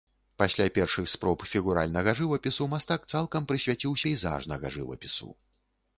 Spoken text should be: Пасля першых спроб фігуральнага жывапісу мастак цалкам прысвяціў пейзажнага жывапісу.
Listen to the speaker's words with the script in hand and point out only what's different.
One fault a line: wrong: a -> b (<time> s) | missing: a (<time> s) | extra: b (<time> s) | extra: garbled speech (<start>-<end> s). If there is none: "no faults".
no faults